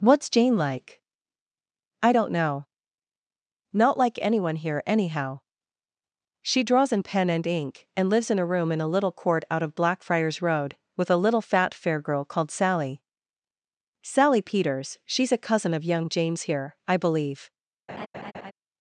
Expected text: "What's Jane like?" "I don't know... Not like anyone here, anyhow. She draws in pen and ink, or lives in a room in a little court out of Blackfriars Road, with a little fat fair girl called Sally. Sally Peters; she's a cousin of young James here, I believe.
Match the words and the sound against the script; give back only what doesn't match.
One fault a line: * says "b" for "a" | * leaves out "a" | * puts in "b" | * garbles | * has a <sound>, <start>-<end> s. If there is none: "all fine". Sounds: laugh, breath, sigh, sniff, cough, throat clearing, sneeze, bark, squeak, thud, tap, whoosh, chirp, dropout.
* says "and" for "or"
* has a laugh, 17.9-18.5 s